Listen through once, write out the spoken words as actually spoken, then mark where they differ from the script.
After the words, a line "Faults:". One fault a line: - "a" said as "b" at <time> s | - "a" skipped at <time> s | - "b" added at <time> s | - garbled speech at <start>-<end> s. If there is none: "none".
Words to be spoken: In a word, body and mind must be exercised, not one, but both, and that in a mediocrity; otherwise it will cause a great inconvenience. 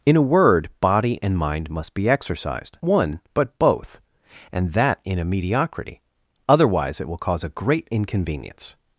In a word, body and mind must be exercised, one, but both, and that in a mediocrity; otherwise it will cause a great inconvenience.
Faults:
- "not" skipped at 2.8 s